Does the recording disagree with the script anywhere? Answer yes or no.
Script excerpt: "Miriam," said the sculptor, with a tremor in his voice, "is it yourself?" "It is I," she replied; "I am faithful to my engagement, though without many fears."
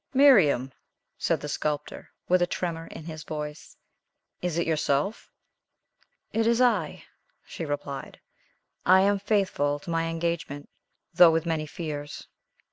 yes